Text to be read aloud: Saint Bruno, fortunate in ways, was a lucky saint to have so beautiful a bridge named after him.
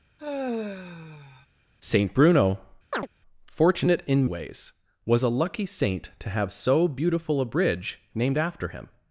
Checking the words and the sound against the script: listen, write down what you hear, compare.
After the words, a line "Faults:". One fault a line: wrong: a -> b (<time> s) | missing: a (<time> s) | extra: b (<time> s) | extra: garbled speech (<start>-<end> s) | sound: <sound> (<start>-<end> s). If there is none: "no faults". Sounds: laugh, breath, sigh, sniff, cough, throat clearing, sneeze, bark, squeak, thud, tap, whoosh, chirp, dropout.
Saint Bruno, fortunate in ways, was a lucky saint to have so beautiful a bridge named after him.
Faults:
sound: sigh (0.2-1.5 s)
sound: chirp (2.9-3.1 s)